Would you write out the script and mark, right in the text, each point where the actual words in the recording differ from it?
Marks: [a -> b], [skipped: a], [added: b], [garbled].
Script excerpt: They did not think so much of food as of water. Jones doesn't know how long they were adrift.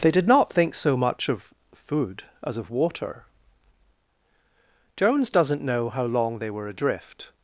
They did not think so much of food as of water. Jones doesn't know how long they were adrift.